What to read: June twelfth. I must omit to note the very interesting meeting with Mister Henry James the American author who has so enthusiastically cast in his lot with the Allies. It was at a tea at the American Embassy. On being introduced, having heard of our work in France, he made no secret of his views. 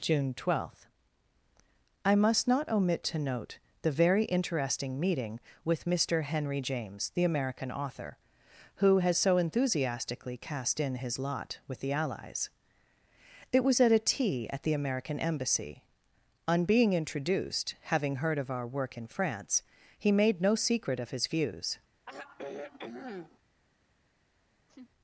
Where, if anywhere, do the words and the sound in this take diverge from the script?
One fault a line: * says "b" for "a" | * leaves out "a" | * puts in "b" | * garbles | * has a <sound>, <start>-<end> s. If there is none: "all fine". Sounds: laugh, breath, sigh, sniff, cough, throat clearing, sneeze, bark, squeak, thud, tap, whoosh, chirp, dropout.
* puts in "not"
* has a sigh, 22.1-23.4 s
* has a laugh, 24.7-24.9 s